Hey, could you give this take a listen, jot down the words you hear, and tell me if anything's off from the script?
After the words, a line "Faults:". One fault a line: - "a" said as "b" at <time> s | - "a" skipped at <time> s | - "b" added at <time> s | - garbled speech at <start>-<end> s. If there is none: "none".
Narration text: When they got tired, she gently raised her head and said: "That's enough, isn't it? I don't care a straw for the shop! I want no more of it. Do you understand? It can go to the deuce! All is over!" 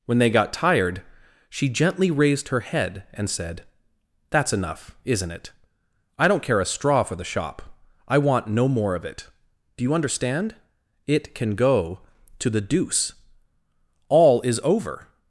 When they got tired, she gently raised her head and said: "That's enough, isn't it? I don't care a straw for the shop! I want no more of it. Do you understand? It can go to the deuce! All is over!"
Faults:
none